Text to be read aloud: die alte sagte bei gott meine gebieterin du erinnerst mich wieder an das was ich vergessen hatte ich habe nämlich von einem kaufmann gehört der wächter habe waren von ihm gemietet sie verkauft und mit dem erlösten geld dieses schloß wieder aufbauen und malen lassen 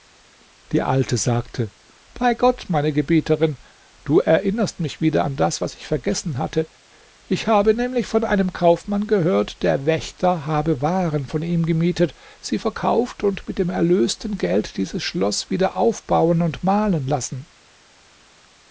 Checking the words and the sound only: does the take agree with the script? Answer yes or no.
yes